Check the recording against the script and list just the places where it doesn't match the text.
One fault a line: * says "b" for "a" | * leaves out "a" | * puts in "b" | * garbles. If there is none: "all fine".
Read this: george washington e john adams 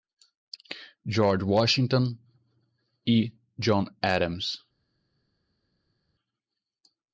all fine